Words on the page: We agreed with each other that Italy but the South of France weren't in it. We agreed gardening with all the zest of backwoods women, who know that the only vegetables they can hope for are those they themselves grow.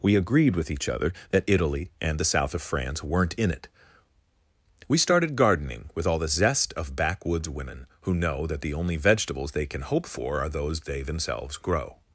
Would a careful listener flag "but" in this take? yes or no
yes